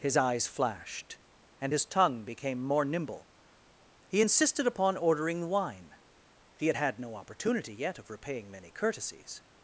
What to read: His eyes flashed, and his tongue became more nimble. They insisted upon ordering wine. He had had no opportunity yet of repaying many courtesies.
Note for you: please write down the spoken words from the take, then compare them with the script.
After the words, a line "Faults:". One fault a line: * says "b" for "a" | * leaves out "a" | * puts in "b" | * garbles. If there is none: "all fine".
His eyes flashed, and his tongue became more nimble. He insisted upon ordering wine. He had had no opportunity yet of repaying many courtesies.
Faults:
* says "He" for "They"